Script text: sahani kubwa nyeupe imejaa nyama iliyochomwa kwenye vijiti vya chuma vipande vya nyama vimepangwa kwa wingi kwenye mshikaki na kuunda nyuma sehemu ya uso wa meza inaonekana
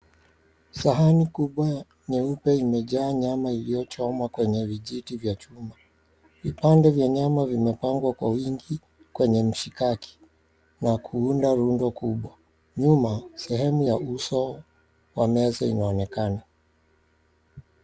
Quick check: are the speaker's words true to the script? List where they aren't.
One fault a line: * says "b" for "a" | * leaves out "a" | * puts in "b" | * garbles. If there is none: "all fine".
* puts in "rundo kubwa"